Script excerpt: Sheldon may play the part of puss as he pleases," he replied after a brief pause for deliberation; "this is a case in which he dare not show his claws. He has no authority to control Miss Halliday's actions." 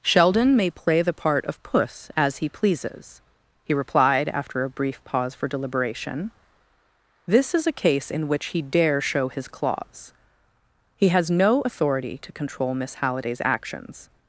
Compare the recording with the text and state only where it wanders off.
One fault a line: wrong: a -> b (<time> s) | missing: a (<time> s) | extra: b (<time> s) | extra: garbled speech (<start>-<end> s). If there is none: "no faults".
missing: not (9.0 s)